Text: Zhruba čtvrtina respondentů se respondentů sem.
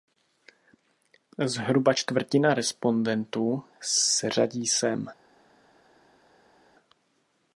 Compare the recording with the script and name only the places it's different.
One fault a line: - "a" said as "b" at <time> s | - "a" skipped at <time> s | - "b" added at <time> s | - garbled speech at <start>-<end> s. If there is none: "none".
- "respondentů" said as "řadí" at 4.3 s